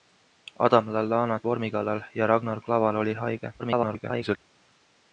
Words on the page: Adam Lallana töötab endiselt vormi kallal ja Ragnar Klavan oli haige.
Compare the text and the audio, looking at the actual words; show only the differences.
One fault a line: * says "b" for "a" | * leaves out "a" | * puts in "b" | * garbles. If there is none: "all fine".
* leaves out "töötab endiselt"
* garbles